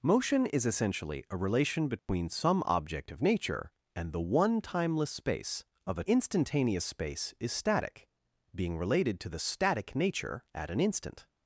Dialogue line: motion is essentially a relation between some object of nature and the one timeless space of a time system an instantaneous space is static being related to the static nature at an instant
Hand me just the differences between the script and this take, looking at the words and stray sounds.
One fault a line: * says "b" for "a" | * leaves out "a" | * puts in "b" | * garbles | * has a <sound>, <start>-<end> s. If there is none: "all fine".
* has a dropout, 2.0-2.1 s
* leaves out "time system an"